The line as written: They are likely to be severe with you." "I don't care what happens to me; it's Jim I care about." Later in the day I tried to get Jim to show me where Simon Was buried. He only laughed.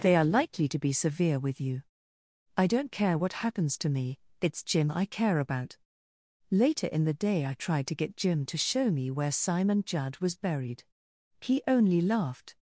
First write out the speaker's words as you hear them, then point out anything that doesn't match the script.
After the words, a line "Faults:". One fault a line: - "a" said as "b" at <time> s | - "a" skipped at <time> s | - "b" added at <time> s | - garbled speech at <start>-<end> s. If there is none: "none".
They are likely to be severe with you." "I don't care what happens to me; it's Jim I care about." Later in the day I tried to get Jim to show me where Simon Judd was buried. He only laughed.
Faults:
- "Judd" added at 9.8 s